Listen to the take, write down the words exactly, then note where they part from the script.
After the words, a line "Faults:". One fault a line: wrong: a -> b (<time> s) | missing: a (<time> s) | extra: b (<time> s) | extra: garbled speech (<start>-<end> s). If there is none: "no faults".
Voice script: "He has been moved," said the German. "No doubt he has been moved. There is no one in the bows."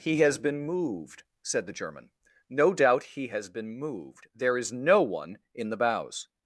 "He has been moved," said the German. "No doubt he has been moved. There is no one in the bows."
Faults:
no faults